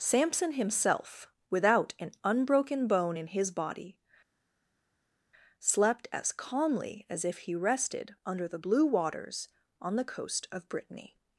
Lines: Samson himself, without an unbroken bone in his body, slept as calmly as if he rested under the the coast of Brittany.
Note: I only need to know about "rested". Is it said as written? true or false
true